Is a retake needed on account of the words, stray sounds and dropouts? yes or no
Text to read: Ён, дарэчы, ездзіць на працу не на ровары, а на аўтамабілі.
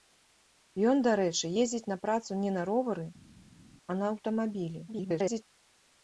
yes